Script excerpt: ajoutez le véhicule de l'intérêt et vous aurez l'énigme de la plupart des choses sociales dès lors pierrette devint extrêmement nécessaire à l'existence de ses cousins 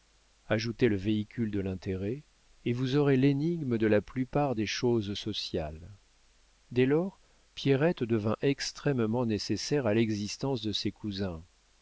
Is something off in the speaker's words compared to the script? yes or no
no